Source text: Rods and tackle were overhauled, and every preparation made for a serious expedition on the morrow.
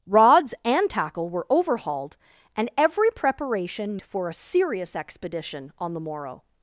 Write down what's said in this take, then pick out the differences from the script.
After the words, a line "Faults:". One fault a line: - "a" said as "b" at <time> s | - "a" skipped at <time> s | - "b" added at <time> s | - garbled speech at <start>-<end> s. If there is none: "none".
Rods and tackle were overhauled, and every preparation for a serious expedition on the morrow.
Faults:
- "made" skipped at 4.0 s